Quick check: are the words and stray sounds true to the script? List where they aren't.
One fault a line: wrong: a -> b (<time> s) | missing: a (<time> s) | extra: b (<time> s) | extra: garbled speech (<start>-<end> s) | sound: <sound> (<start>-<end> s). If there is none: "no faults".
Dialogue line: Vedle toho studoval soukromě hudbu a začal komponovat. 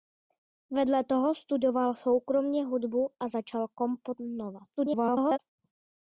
extra: garbled speech (4.8-5.4 s)